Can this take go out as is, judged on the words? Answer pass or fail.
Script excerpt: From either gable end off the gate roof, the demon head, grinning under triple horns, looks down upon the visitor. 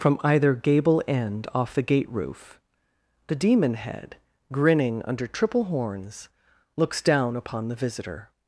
pass